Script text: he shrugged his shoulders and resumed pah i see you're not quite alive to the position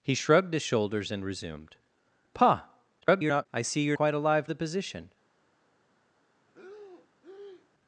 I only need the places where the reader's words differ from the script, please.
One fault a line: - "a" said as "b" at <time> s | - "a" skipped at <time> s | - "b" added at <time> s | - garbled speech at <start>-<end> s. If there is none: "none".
- garbled speech at 3.0-3.5 s
- "not" skipped at 4.0 s
- "to" skipped at 4.5 s